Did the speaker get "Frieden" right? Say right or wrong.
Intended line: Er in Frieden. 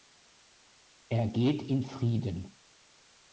right